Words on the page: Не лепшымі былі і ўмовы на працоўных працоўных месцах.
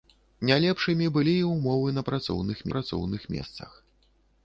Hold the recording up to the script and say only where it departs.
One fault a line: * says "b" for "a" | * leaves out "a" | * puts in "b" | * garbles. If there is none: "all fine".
all fine